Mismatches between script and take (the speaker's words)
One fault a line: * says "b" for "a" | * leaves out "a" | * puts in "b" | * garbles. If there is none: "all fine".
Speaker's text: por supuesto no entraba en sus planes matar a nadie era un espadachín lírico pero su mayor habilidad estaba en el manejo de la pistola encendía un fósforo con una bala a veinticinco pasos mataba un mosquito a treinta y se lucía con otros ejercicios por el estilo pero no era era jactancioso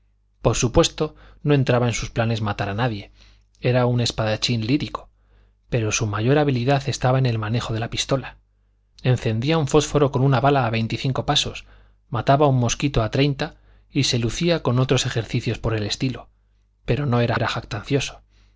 all fine